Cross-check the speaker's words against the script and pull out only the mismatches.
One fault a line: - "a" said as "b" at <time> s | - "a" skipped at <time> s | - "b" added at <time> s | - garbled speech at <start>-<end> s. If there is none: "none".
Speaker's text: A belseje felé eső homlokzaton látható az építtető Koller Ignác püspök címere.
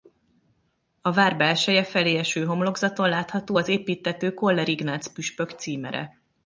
- "vár" added at 1.1 s